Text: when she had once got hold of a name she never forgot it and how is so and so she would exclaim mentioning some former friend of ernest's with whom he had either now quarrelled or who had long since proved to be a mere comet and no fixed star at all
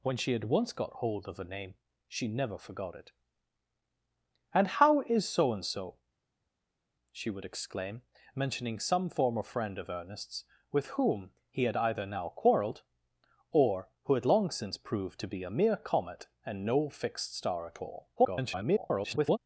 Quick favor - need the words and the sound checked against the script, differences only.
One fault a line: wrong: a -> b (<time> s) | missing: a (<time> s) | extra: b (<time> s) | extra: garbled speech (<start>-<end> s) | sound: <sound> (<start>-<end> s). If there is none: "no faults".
extra: garbled speech (18.2-19.4 s)